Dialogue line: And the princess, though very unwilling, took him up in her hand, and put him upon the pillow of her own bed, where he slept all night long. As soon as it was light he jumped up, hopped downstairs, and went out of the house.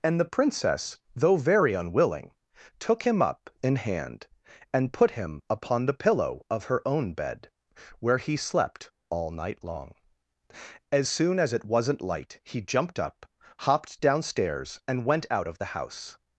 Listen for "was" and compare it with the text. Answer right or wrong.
wrong